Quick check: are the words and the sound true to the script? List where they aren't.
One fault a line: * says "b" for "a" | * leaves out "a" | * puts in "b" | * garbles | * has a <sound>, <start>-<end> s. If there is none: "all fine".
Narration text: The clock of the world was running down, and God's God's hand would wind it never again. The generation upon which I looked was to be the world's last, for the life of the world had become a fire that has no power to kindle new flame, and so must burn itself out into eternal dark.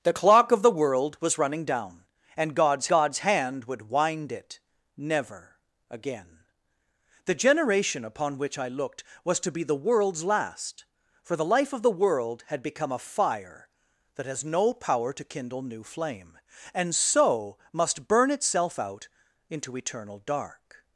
all fine